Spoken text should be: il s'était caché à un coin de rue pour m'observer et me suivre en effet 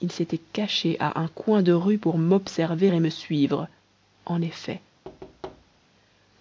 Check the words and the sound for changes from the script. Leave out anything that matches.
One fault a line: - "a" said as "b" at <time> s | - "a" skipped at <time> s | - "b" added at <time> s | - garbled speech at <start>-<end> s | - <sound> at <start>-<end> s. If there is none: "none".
- thud at 5.0-5.9 s